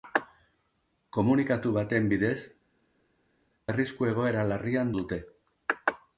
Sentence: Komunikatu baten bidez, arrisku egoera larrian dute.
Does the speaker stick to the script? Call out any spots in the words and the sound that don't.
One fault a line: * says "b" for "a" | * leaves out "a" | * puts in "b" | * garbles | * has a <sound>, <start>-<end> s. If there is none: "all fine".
all fine